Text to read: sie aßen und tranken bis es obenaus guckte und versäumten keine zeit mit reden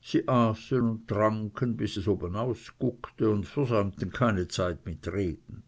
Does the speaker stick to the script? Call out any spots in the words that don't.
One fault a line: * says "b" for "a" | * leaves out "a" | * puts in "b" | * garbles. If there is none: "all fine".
all fine